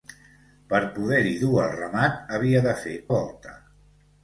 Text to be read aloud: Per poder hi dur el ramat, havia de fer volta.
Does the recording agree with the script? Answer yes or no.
yes